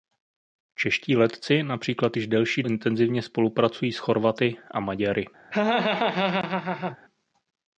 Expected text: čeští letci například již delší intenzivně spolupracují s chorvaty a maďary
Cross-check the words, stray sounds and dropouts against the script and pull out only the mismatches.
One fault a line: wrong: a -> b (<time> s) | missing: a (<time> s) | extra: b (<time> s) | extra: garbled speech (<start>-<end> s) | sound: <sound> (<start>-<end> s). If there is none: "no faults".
sound: laugh (5.5-7.0 s)